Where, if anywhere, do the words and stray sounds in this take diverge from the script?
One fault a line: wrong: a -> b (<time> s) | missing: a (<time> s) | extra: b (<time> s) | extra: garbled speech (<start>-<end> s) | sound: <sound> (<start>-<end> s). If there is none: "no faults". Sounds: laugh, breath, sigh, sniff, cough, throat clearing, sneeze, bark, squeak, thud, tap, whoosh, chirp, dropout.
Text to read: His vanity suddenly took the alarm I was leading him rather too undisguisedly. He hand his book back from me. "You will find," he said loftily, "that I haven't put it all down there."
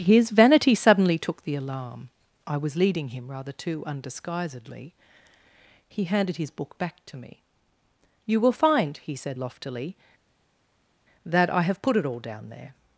wrong: hand -> handed (6.0 s)
wrong: from -> to (7.0 s)
wrong: haven't -> have (11.6 s)